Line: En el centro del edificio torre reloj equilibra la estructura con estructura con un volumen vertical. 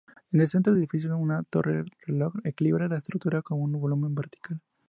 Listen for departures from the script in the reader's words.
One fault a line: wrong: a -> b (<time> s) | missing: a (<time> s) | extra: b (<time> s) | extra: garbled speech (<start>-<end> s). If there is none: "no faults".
extra: una (1.2 s)
missing: estructura con (3.6 s)